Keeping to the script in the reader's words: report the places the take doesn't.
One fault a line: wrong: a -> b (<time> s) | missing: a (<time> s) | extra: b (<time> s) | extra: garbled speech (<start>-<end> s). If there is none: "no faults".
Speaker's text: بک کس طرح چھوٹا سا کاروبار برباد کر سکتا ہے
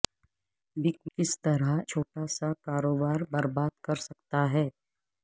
no faults